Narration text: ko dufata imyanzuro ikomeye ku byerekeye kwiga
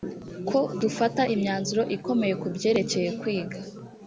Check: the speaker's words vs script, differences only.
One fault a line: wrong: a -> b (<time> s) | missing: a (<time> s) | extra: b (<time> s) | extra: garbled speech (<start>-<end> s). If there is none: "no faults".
no faults